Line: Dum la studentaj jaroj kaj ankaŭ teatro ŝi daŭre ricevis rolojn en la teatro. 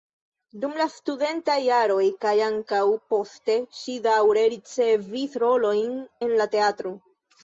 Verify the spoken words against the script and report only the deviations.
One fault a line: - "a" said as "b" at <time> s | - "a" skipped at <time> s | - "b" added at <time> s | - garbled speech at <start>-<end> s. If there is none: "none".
- "teatro" said as "poste" at 3.1 s